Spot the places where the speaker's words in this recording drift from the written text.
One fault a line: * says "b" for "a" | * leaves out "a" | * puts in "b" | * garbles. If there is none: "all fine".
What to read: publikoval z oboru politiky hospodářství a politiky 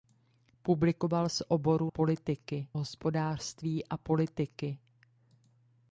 all fine